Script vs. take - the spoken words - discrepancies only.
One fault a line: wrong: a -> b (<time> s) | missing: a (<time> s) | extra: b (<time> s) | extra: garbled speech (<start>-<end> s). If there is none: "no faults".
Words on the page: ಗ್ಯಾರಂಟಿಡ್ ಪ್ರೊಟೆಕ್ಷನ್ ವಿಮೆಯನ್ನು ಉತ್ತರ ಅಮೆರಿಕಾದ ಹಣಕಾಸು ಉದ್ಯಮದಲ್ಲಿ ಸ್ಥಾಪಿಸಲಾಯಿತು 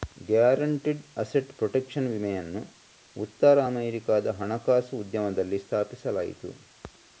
extra: ಅಸೆಟ್ (1.2 s)